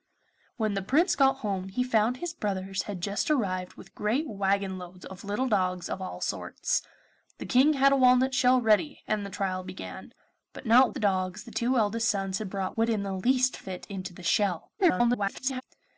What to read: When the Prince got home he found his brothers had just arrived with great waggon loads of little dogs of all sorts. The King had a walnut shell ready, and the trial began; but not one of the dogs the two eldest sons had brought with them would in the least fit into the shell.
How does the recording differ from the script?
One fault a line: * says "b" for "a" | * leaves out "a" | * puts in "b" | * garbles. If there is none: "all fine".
* leaves out "one of"
* leaves out "with them"
* garbles